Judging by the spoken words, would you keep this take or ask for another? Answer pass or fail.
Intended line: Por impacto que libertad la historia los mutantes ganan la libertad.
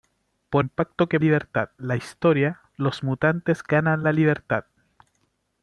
pass